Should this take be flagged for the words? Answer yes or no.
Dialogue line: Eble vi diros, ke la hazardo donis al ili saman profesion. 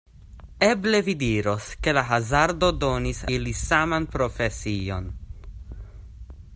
yes